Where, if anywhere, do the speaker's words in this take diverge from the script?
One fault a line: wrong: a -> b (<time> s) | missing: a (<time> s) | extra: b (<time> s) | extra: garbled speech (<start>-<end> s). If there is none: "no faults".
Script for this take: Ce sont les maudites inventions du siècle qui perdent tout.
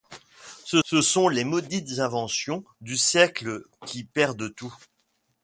extra: ce (0.8 s)